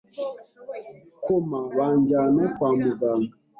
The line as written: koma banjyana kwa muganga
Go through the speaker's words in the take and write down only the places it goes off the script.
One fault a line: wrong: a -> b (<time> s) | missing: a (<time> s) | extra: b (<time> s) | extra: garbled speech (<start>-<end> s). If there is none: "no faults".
no faults